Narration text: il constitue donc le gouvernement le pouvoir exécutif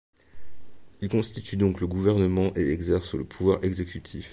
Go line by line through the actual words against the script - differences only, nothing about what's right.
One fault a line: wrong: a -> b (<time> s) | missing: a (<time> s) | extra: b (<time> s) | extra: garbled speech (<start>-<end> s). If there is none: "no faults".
extra: et exerce (2.6 s)